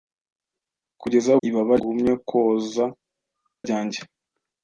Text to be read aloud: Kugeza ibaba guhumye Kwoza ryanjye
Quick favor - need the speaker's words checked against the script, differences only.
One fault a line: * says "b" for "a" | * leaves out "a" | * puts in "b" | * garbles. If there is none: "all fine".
all fine